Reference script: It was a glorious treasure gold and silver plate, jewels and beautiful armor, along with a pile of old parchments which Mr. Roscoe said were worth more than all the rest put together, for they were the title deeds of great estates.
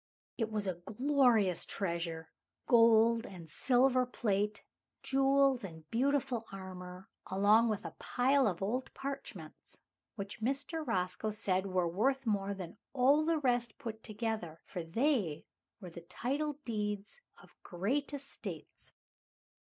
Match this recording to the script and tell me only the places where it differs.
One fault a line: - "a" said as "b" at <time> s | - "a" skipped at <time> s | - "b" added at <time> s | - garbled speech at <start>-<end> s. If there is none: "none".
none